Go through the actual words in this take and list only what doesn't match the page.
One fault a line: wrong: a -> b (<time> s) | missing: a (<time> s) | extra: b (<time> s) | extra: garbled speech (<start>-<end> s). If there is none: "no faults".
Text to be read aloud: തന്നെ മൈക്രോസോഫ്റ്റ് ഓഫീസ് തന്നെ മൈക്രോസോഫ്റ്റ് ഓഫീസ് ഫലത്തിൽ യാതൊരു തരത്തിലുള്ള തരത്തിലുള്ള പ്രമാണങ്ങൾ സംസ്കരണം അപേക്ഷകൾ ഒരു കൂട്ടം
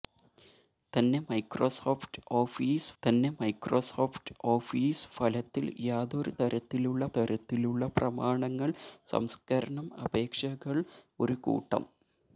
no faults